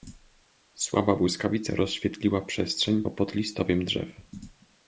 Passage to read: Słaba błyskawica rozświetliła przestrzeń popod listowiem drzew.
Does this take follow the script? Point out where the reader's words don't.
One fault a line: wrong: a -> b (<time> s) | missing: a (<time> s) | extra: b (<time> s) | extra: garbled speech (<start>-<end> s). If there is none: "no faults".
no faults